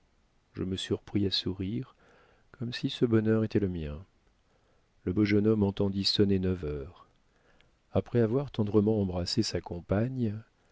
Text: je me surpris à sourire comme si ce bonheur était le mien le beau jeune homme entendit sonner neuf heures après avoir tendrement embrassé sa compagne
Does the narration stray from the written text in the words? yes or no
no